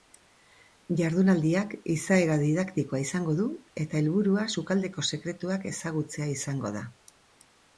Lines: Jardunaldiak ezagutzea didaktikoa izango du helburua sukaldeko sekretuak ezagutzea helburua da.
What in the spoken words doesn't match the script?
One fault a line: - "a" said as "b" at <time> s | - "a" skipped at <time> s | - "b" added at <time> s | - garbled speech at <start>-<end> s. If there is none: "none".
- "ezagutzea" said as "izaera" at 1.9 s
- "eta" added at 3.9 s
- "helburua" said as "izango" at 6.4 s